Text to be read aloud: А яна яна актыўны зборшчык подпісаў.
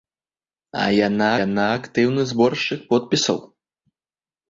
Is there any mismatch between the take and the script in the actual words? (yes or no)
no